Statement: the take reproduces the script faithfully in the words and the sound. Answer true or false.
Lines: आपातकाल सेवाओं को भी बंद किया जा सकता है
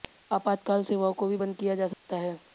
false